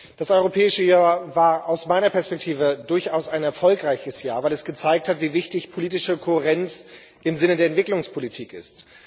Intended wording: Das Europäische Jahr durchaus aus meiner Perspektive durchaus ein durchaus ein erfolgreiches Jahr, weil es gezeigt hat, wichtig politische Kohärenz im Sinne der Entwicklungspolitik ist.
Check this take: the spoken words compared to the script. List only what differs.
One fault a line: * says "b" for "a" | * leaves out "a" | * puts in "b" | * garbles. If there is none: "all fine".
* says "war" for "durchaus"
* leaves out "durchaus ein"
* puts in "wie"